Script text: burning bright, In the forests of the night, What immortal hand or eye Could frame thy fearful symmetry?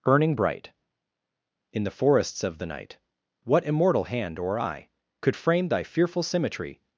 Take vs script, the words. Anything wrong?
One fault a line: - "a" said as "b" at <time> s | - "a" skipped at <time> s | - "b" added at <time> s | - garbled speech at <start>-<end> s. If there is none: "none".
none